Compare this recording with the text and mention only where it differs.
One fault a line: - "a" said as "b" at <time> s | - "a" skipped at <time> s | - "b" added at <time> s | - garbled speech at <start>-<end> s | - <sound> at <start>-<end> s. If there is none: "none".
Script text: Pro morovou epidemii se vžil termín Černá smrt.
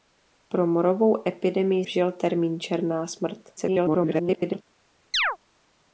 - "se" skipped at 1.9 s
- garbled speech at 3.6-4.6 s
- chirp at 5.1-5.4 s